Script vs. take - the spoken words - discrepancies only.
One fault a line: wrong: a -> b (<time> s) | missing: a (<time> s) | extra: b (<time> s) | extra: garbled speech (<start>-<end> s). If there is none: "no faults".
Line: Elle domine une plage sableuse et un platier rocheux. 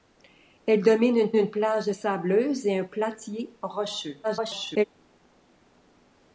extra: une (1.3 s)
extra: garbled speech (4.2-4.8 s)